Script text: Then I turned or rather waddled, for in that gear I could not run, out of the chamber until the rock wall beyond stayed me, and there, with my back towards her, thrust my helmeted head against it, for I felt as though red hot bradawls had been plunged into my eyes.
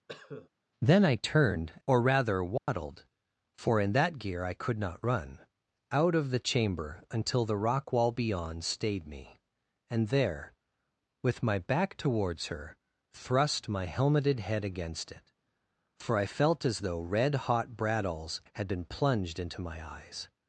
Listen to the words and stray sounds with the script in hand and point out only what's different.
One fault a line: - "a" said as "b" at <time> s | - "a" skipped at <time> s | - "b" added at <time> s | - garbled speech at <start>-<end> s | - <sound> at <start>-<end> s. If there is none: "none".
- cough at 0.1-0.5 s
- dropout at 2.6-2.7 s